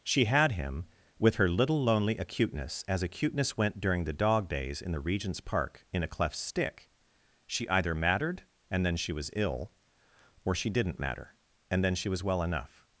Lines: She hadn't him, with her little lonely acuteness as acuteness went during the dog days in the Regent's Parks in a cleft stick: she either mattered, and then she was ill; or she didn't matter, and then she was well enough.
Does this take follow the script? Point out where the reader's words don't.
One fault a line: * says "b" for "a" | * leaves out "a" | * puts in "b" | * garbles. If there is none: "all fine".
* says "had" for "hadn't"
* says "Park" for "Parks"